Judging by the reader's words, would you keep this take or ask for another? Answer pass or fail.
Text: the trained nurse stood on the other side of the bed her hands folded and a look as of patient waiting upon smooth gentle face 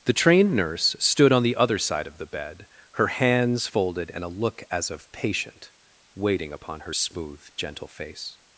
fail